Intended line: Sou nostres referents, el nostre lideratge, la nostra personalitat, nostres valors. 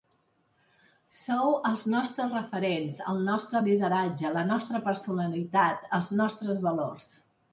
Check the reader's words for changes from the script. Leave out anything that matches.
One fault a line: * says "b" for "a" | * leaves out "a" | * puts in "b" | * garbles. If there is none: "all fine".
* puts in "els"
* puts in "els"